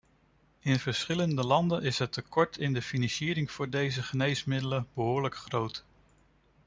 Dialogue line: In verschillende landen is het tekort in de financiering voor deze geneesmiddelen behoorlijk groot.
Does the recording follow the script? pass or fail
pass